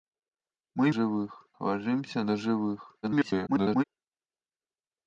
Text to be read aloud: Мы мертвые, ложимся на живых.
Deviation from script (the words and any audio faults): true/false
true